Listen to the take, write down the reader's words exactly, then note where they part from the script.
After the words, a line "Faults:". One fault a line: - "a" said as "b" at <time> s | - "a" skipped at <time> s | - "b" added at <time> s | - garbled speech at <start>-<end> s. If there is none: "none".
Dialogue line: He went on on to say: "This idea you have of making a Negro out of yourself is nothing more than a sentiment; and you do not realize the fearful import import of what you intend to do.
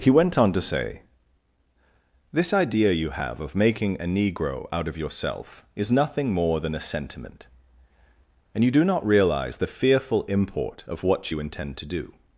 He went on to say: "This idea you have of making a Negro out of yourself is nothing more than a sentiment; and you do not realize the fearful import of what you intend to do.
Faults:
- "on" skipped at 0.5 s
- "import" skipped at 10.8 s